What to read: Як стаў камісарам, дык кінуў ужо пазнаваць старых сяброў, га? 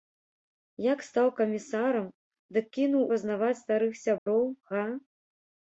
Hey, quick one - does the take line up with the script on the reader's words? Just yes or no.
no